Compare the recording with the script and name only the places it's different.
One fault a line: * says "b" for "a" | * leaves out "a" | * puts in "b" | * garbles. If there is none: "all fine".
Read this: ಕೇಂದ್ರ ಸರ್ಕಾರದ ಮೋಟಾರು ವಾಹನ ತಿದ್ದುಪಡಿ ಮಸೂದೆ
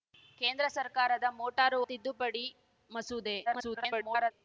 * leaves out "ವಾಹನ"
* garbles